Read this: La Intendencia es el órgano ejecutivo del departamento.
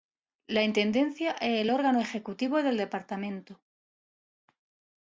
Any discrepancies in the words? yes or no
no